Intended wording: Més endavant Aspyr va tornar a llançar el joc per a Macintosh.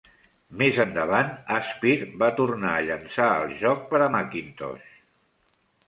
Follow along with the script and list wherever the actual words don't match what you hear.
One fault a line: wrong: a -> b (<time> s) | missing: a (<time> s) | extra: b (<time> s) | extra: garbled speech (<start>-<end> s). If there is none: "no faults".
no faults